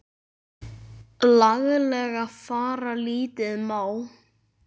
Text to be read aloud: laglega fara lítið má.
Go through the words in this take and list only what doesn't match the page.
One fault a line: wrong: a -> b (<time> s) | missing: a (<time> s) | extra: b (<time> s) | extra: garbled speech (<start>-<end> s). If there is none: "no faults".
no faults